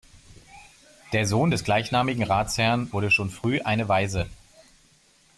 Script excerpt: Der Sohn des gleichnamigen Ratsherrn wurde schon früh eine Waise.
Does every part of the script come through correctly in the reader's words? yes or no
yes